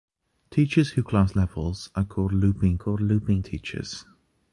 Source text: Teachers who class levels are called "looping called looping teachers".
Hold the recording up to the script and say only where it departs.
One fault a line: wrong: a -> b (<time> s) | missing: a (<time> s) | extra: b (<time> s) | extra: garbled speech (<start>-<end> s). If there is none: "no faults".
no faults